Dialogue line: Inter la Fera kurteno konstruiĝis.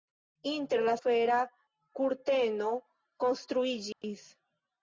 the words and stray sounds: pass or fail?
fail